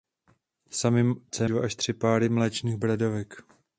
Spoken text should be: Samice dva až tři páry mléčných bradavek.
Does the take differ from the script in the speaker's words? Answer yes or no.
no